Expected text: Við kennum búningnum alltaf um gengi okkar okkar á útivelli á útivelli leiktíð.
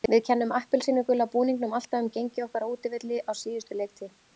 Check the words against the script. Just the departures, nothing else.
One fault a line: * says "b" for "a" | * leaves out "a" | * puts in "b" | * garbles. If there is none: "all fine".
* puts in "appelsínugula"
* leaves out "okkar"
* says "síðustu" for "útivelli"